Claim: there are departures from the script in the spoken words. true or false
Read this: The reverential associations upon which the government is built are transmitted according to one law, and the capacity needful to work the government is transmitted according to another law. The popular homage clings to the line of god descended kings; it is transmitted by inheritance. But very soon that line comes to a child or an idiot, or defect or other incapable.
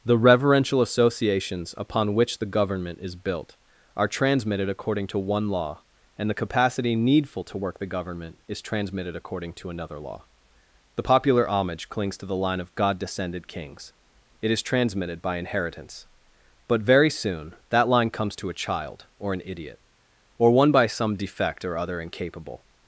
true